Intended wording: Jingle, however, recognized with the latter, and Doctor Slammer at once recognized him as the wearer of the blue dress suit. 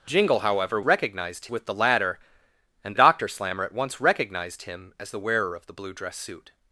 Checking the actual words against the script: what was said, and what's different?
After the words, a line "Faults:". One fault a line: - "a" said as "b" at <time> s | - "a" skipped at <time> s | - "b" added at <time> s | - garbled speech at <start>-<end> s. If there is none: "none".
Jingle, however, recognized with the latter, and Doctor Slammer at once recognized him as the wearer of the blue dress suit.
Faults:
none